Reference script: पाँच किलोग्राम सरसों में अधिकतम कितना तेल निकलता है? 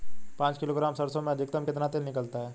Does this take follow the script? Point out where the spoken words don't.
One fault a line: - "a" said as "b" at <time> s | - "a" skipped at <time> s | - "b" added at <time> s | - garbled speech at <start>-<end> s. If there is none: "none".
none